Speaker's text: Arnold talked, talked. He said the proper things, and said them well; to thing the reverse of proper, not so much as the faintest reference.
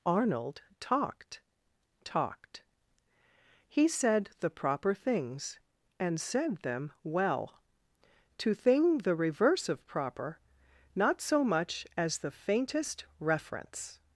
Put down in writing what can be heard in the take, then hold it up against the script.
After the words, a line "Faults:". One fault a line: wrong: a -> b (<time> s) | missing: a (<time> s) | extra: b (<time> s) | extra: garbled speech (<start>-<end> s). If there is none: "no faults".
Arnold talked, talked. He said the proper things, and said them well; to thing the reverse of proper, not so much as the faintest reference.
Faults:
no faults